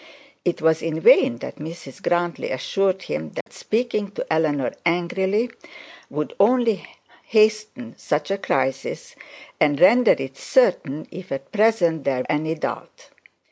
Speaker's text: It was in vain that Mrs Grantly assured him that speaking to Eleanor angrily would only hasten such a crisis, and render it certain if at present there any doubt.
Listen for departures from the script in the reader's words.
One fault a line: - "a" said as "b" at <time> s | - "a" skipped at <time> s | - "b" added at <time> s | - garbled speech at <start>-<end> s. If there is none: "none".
none